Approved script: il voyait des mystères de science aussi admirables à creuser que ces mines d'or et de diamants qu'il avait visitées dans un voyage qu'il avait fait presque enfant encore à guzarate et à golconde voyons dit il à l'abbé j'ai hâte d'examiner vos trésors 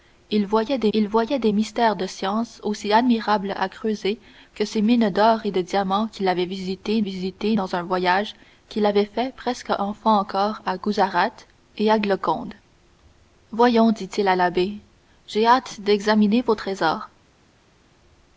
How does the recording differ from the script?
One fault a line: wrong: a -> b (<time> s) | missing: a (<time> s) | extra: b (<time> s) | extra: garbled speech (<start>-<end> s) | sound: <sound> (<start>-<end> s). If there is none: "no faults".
extra: il voyait des (0.9 s)
extra: visitées (7.0 s)